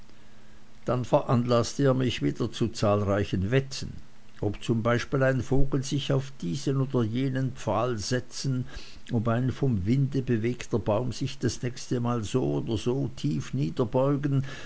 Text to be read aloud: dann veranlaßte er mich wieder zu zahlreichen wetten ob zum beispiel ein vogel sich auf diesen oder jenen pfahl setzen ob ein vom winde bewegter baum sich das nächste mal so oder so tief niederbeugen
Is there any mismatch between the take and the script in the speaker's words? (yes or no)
no